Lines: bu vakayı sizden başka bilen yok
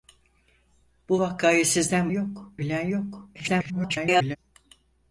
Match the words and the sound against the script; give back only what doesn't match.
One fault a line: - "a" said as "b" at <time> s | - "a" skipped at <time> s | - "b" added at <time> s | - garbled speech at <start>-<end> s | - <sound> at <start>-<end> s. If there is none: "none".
- "başka" said as "yok" at 2.1 s
- garbled speech at 3.3-4.4 s